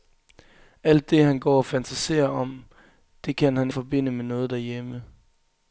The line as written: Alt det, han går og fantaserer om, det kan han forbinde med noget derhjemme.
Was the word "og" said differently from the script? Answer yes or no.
no